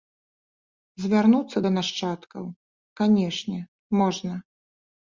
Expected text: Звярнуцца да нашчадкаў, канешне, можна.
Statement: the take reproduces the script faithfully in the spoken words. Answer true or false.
true